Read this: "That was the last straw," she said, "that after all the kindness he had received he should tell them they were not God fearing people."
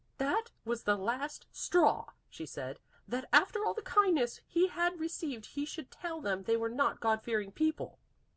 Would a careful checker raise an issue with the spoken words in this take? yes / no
no